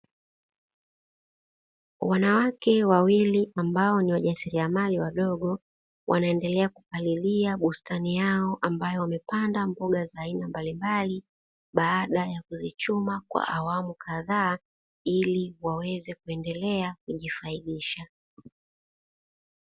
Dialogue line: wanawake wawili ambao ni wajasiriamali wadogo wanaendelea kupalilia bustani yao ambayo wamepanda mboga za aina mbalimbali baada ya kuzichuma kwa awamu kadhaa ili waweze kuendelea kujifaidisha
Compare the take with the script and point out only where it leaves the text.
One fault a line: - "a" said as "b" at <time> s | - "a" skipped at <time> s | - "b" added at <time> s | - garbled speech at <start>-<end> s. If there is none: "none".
none